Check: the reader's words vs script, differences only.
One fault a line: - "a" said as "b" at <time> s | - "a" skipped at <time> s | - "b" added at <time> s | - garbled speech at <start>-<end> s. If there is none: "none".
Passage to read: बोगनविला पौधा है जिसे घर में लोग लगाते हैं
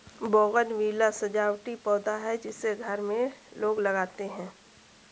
- "सजावटी" added at 1.1 s